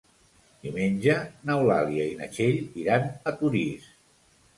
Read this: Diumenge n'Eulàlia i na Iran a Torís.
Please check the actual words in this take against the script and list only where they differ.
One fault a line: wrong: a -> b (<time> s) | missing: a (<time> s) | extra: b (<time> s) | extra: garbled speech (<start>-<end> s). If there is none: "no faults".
extra: Txell (2.4 s)